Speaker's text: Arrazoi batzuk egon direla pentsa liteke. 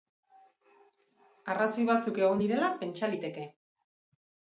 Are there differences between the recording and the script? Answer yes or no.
no